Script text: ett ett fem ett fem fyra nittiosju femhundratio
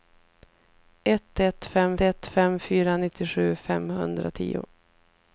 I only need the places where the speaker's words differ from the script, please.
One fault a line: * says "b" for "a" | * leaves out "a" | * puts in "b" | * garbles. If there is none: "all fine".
all fine